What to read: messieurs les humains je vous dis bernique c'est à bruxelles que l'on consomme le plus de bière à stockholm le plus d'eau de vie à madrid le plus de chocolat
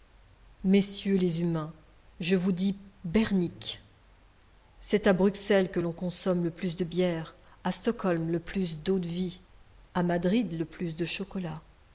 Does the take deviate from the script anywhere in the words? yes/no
no